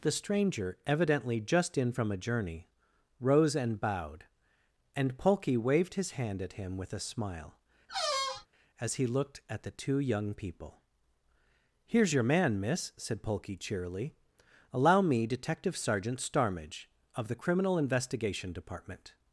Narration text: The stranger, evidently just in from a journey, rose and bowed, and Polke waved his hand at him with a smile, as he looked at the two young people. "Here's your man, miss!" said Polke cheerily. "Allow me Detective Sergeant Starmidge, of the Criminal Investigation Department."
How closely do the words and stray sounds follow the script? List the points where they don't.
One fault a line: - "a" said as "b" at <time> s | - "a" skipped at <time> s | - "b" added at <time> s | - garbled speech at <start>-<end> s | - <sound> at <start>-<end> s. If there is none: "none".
- squeak at 7.9-8.5 s